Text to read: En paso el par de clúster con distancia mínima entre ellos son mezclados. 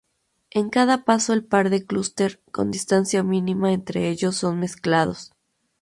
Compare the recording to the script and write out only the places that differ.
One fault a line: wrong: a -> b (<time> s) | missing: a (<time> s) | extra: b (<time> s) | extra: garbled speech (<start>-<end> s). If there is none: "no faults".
extra: cada (0.7 s)